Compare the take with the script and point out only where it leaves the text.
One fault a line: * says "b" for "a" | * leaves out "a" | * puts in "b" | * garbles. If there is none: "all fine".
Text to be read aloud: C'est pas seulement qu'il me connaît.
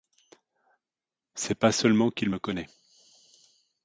all fine